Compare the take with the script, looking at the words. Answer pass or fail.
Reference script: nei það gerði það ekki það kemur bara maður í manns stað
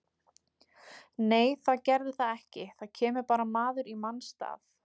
pass